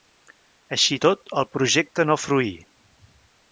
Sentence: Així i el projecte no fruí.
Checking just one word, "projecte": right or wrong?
right